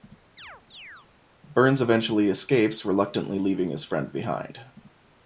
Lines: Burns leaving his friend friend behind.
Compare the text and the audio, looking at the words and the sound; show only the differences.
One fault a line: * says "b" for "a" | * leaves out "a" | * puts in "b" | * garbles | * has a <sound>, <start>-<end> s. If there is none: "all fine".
* has a chirp, 0.4-1.1 s
* puts in "eventually escapes reluctantly"
* leaves out "friend"